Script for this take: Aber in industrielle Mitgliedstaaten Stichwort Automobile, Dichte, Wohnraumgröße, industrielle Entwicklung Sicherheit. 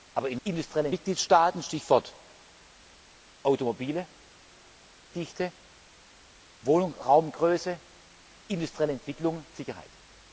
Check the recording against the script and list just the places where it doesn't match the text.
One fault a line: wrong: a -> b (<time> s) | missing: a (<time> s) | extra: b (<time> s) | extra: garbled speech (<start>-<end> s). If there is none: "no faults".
no faults